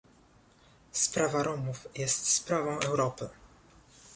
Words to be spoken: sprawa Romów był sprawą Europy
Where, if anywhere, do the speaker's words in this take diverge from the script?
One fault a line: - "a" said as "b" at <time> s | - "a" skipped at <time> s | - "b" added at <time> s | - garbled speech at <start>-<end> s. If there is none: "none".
- "był" said as "jest" at 2.0 s